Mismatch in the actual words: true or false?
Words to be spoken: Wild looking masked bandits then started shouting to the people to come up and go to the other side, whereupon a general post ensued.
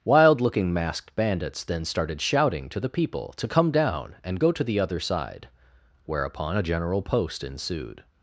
true